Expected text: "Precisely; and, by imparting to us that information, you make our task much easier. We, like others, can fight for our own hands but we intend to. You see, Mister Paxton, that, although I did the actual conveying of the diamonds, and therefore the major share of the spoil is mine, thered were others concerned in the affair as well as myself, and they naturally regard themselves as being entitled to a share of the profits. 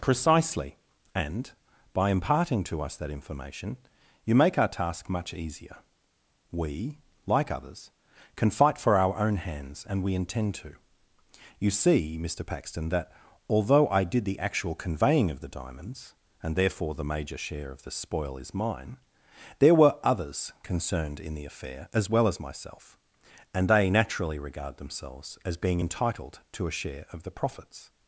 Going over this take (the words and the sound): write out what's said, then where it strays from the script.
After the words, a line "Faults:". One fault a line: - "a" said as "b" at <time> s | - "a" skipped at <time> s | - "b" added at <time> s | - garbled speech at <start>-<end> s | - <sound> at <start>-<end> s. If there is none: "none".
"Precisely; and, by imparting to us that information, you make our task much easier. We, like others, can fight for our own hands and we intend to. You see, Mister Paxton, that, although I did the actual conveying of the diamonds, and therefore the major share of the spoil is mine, there were others concerned in the affair as well as myself, and they naturally regard themselves as being entitled to a share of the profits.
Faults:
- "but" said as "and" at 9.9 s
- "thered" said as "there" at 19.6 s